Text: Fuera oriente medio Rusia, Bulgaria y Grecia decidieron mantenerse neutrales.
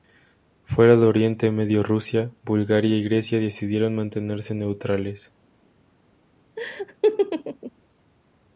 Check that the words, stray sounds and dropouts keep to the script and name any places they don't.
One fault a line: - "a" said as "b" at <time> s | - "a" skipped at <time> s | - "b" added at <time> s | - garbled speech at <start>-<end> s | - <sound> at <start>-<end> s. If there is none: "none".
- "de" added at 0.9 s
- laugh at 6.6-7.7 s